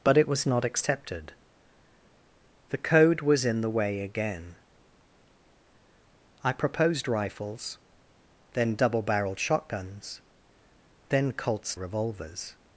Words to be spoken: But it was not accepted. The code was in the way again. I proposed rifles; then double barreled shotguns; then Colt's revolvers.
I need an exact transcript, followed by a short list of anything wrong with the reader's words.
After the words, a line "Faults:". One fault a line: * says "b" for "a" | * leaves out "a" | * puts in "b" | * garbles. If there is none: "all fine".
But it was not accepted. The code was in the way again. I proposed rifles; then double barreled shotguns; then Colt's revolvers.
Faults:
all fine